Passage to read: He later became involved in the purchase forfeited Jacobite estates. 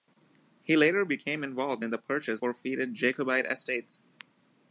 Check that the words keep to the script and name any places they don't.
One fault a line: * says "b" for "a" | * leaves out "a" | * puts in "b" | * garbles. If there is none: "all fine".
all fine